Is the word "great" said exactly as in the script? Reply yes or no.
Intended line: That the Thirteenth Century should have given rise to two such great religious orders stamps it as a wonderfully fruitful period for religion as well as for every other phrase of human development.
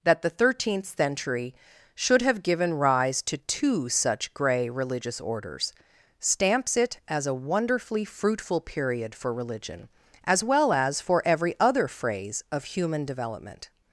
no